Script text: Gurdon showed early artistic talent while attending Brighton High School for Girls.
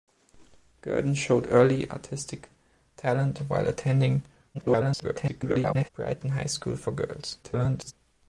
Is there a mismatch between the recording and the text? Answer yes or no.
yes